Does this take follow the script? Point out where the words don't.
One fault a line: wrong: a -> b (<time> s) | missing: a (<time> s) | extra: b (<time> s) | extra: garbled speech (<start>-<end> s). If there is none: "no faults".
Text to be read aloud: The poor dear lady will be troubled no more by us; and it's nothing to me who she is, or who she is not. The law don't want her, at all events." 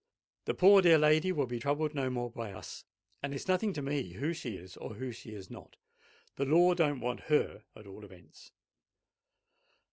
no faults